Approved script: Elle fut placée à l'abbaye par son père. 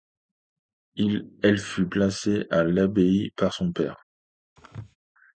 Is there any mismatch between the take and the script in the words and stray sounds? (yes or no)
yes